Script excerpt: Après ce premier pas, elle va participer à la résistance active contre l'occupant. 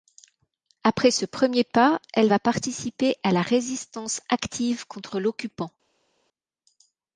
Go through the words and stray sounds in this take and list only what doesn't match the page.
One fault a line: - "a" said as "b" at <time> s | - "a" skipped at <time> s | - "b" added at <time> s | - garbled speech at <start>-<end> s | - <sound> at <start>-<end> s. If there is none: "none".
none